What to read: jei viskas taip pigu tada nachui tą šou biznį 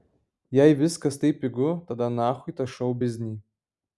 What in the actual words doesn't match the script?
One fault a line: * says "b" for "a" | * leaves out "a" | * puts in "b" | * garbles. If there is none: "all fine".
all fine